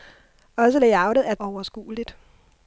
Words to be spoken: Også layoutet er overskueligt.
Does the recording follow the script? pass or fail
pass